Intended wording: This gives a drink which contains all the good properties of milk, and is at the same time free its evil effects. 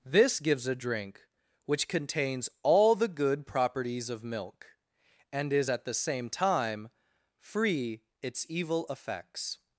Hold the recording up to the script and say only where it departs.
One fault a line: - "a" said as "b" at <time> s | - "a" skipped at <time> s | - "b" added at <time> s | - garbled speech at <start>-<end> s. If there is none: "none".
none